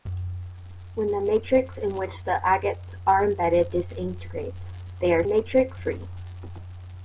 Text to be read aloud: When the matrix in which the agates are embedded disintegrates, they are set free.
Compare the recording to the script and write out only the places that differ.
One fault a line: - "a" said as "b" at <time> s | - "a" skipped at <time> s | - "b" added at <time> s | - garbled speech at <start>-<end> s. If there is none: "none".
- "set" said as "matrix" at 5.2 s